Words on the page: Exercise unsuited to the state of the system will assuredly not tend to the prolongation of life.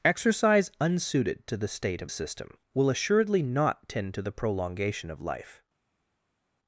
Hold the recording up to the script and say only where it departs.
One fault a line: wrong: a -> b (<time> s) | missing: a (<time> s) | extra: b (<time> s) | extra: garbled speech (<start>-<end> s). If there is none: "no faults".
missing: the (2.1 s)